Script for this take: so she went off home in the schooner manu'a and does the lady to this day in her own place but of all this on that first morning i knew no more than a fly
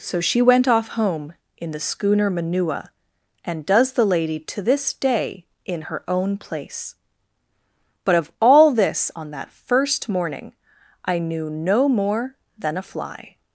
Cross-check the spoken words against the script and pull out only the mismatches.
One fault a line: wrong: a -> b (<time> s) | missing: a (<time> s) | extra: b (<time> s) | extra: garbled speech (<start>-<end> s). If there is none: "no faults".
no faults